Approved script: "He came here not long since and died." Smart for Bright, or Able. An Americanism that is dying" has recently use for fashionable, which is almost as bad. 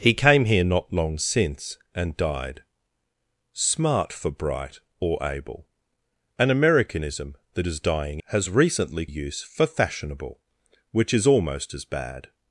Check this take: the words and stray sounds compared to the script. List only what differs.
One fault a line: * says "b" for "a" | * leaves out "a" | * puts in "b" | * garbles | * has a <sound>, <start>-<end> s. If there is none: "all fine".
all fine